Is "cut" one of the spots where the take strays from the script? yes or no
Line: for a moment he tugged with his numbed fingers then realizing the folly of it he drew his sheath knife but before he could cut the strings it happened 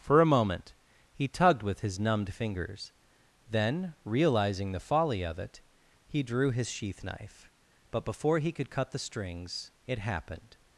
no